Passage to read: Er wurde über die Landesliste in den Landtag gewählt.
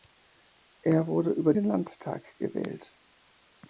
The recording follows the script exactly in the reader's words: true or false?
false